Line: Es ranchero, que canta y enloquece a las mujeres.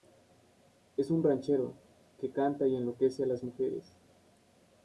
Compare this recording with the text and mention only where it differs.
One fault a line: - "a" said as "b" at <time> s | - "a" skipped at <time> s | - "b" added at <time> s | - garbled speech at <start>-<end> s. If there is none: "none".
- "un" added at 1.1 s